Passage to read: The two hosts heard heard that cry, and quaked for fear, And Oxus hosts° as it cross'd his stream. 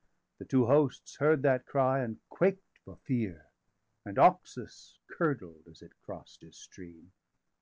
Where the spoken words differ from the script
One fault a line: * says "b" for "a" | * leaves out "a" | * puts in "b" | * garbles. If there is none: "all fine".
* leaves out "heard"
* says "curdled" for "hosts"